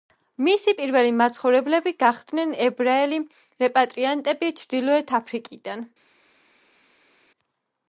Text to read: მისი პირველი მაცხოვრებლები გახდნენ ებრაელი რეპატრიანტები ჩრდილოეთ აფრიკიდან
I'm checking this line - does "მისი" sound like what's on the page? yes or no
yes